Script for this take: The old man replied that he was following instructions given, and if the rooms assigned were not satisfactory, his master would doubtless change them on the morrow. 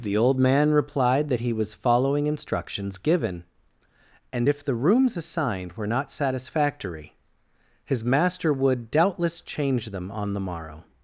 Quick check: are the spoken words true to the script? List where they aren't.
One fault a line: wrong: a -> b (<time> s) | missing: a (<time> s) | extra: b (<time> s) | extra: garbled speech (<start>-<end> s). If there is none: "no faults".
no faults